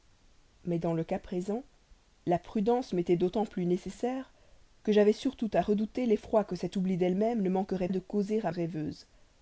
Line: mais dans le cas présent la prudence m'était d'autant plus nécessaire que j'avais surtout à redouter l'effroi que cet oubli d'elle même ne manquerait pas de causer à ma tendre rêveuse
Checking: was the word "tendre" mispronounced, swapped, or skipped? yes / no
yes